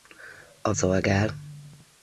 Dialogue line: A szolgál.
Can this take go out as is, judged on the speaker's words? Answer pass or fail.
pass